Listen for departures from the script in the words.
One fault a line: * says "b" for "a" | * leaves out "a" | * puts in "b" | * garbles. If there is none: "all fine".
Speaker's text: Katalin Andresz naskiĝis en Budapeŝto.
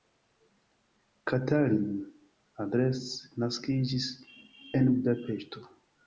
all fine